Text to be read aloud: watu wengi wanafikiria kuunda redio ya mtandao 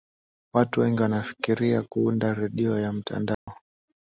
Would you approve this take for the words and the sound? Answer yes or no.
no